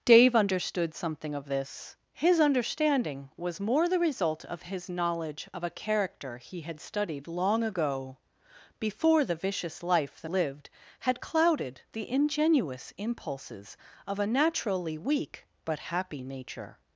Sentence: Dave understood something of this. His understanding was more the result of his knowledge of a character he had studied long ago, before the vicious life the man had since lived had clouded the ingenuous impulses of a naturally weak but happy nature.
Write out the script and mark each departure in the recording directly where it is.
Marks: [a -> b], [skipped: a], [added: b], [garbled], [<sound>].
Dave understood something of this. His understanding was more the result of his knowledge of a character he had studied long ago, before the vicious life the [skipped: man had since] lived had clouded the ingenuous impulses of a naturally weak but happy nature.